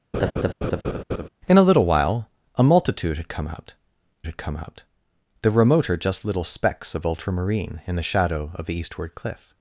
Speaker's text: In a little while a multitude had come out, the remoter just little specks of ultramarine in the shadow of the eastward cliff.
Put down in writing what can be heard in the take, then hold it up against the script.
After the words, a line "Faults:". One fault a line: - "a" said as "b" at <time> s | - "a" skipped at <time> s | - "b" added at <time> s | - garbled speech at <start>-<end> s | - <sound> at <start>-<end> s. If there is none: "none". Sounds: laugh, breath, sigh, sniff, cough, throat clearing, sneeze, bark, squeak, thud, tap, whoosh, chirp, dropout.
In a little while a multitude had come out had come out, the remoter just little specks of ultramarine in the shadow of the eastward cliff.
Faults:
- laugh at 0.1-1.3 s
- "had come out" added at 4.3 s